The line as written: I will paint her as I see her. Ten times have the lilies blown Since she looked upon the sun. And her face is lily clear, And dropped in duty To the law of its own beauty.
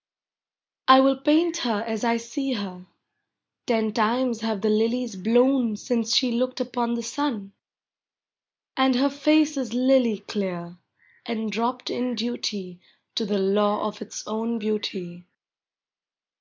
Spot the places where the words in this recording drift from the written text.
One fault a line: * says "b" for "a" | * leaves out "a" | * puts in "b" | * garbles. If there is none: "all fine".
all fine